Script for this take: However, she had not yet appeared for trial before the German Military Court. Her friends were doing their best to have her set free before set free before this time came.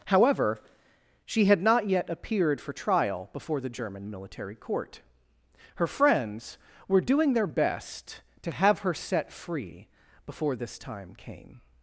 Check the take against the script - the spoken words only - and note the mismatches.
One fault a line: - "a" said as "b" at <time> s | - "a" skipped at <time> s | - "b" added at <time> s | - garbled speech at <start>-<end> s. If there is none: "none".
- "set free before" skipped at 10.5 s